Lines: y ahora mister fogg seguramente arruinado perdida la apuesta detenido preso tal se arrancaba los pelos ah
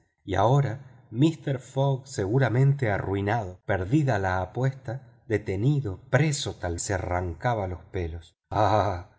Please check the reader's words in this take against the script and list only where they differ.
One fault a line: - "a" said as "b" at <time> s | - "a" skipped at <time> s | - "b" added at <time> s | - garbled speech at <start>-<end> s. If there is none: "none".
none